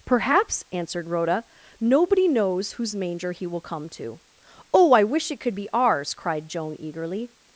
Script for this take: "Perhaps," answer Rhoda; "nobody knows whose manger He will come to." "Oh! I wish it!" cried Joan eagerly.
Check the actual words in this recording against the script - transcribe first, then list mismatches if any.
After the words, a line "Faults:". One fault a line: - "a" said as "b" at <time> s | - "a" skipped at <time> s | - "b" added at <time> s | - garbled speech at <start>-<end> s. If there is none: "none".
"Perhaps," answered Rhoda; "nobody knows whose manger He will come to." "Oh! I wish it could be ours!" cried Joan eagerly.
Faults:
- "answer" said as "answered" at 0.7 s
- "could be ours" added at 5.4 s